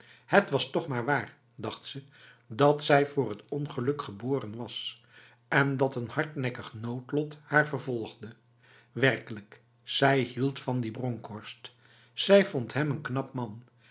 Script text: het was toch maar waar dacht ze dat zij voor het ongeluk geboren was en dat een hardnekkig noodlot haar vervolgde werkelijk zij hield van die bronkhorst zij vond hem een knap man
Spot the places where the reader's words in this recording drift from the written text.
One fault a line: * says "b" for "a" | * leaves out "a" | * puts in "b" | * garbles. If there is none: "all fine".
all fine